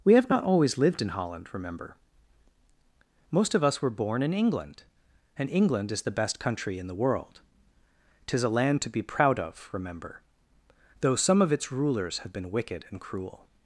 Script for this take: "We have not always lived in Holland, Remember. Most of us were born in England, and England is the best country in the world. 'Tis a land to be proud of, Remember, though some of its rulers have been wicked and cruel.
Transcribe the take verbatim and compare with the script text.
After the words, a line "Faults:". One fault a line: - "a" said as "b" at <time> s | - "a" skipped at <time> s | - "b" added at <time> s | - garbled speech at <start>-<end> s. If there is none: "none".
"We have not always lived in Holland, Remember. Most of us were born in England, and England is the best country in the world. 'Tis a land to be proud of, Remember, though some of its rulers have been wicked and cruel.
Faults:
none